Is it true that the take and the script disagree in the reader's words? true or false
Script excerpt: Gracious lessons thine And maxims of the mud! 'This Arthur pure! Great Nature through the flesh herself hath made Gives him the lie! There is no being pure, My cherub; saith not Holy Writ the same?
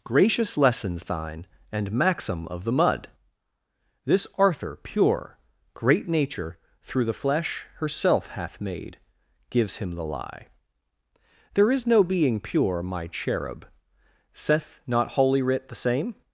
true